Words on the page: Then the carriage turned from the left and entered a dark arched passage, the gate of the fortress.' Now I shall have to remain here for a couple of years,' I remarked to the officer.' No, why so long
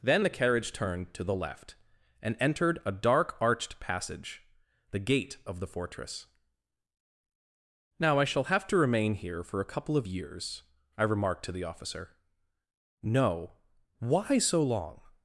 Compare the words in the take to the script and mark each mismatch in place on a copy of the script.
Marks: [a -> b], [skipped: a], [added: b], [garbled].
Then the carriage turned [from -> to] the left and entered a dark arched passage, the gate of the fortress.' Now I shall have to remain here for a couple of years,' I remarked to the officer.' No, why so long